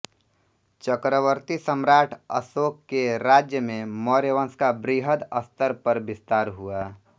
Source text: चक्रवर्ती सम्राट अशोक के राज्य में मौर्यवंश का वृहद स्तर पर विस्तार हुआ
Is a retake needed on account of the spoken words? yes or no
no